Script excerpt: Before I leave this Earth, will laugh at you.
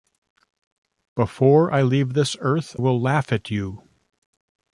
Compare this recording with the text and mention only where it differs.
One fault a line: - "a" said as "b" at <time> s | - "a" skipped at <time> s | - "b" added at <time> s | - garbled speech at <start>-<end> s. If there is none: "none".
none